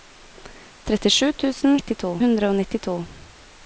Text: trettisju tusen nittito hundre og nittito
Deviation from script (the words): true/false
false